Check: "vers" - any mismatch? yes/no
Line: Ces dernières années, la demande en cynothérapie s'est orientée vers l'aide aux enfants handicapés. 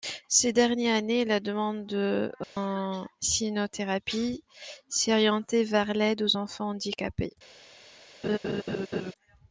no